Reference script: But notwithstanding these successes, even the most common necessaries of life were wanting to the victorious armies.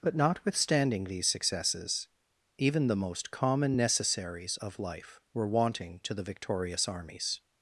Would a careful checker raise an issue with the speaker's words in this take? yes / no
no